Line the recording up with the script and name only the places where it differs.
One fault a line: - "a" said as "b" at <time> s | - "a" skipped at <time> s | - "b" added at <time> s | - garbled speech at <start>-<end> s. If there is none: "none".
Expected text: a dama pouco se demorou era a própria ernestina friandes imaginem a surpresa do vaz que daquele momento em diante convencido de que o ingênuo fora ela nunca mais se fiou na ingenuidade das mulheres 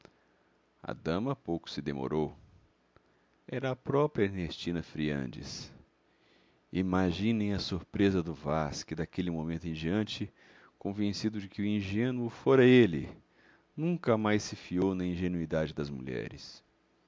- "ela" said as "ele" at 12.7 s